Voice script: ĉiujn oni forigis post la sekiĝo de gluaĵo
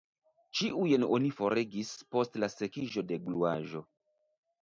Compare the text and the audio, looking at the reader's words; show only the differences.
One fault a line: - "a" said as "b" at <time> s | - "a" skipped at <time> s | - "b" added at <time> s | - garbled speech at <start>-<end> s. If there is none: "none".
none